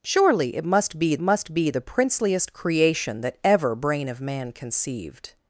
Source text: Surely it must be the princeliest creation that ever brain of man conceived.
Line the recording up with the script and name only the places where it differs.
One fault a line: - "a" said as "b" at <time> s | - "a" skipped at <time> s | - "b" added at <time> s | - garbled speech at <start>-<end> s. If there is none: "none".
- "must be" added at 1.2 s